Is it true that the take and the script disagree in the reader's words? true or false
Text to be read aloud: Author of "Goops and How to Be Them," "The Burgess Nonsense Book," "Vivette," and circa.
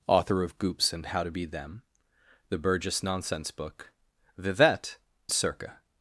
true